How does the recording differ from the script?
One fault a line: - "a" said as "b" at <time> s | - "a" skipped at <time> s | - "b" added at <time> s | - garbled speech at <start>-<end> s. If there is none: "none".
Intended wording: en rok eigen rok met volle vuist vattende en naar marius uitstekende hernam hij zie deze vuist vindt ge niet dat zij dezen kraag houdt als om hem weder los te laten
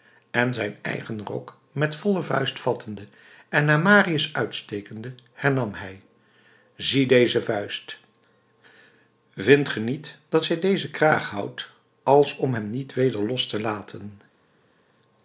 - "rok" said as "zijn" at 0.5 s
- "niet" added at 12.7 s